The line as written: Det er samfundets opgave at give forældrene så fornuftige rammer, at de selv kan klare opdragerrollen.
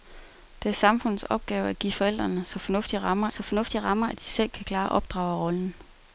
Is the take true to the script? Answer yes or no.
no